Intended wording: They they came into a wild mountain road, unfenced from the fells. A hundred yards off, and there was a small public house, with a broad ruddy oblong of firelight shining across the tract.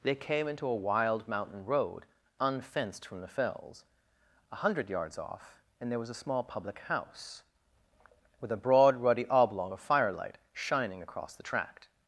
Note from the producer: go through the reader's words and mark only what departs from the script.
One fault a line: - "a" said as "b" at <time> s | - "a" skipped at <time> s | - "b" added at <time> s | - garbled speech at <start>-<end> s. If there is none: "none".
- "they" skipped at 0.1 s